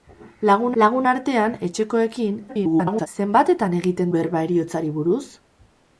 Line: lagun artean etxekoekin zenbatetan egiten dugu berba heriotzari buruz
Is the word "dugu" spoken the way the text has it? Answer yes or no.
no